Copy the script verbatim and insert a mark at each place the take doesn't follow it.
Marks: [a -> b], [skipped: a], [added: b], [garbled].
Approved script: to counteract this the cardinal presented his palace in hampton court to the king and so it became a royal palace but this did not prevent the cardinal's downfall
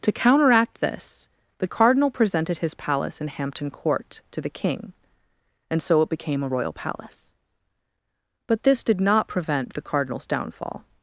to counteract this the cardinal presented his palace in hampton court to the king and so it became a royal palace but this did not prevent the cardinal's downfall